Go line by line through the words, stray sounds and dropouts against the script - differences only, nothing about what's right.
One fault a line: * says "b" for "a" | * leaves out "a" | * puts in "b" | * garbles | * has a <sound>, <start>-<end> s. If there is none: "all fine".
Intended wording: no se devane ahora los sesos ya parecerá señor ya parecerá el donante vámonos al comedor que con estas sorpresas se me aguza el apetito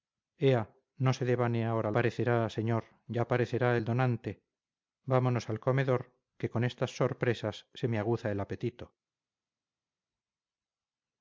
* leaves out "los sesos ya"